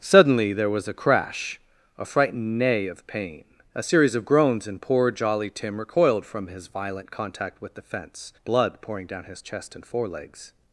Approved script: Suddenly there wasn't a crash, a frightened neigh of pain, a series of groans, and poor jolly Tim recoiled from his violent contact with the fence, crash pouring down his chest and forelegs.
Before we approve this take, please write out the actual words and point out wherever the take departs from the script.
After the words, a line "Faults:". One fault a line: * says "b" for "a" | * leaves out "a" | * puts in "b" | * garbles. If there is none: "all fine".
Suddenly there was a crash, a frightened neigh of pain, a series of groans, and poor jolly Tim recoiled from his violent contact with the fence, blood pouring down his chest and forelegs.
Faults:
* says "was" for "wasn't"
* says "blood" for "crash"